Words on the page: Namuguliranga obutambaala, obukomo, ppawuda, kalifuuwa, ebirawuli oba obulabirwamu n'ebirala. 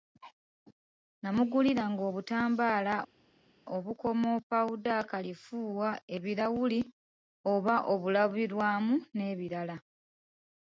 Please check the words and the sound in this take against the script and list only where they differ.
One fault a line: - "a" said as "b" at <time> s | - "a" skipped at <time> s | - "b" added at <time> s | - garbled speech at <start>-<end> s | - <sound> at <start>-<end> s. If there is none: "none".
none